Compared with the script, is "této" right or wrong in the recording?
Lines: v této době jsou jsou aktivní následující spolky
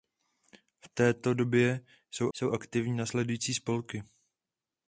right